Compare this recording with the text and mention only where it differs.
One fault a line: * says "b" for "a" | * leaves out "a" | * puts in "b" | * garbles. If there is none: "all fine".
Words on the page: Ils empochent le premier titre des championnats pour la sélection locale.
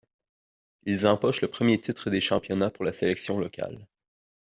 all fine